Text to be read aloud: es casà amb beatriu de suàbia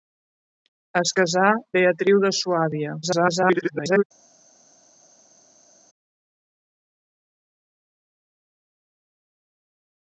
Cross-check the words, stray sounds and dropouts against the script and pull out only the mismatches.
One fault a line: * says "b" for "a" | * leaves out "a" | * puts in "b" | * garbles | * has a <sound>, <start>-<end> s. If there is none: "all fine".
* leaves out "amb"
* garbles